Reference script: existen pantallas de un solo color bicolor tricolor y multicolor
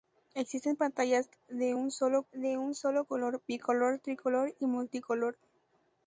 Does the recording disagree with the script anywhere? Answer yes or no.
yes